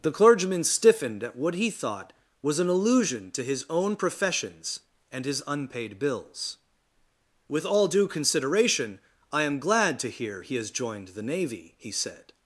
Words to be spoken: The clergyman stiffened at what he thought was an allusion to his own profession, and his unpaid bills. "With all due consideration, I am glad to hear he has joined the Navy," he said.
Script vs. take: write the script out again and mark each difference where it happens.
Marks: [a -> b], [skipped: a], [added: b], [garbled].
The clergyman stiffened at what he thought was an allusion to his own [profession, -> professions] and his unpaid bills. "With all due consideration, I am glad to hear he has joined the Navy," he said.